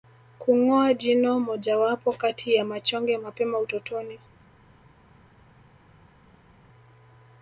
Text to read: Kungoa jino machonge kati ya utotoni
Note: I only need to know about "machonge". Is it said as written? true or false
false